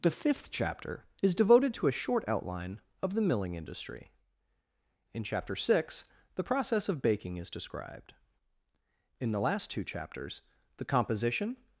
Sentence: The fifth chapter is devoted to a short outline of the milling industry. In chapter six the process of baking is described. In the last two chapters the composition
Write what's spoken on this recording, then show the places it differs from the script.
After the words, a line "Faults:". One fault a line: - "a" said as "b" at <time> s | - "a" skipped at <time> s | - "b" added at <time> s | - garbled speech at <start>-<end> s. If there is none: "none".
The fifth chapter is devoted to a short outline of the milling industry. In chapter six the process of baking is described. In the last two chapters the composition
Faults:
none